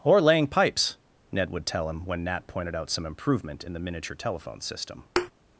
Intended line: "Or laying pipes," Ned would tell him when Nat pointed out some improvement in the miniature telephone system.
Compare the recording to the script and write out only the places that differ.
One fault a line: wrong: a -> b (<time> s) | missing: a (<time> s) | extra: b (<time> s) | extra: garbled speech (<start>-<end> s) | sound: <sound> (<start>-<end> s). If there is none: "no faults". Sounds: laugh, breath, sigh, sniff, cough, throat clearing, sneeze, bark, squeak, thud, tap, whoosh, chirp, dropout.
sound: thud (5.2-5.3 s)